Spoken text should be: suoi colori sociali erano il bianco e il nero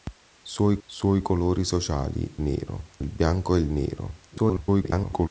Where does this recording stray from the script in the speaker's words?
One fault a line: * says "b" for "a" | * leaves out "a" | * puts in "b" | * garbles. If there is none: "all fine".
* puts in "suoi"
* says "nero" for "erano"
* garbles